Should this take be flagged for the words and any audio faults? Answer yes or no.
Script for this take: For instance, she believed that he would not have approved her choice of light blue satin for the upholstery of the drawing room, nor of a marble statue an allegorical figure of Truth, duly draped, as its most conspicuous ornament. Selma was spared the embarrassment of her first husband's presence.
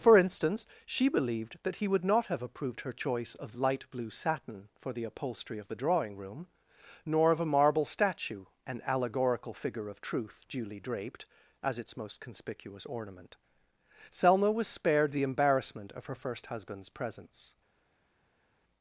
no